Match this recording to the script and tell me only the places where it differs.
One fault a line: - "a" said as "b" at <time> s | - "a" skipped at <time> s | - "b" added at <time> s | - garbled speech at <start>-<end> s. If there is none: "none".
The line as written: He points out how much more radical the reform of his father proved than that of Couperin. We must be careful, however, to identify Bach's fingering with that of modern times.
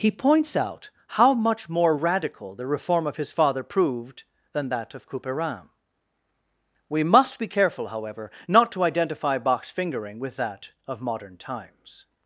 - "not" added at 8.5 s